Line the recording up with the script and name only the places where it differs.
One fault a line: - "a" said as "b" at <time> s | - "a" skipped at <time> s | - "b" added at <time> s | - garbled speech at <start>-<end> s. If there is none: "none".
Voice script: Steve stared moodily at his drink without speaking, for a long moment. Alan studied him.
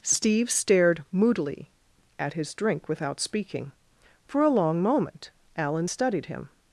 none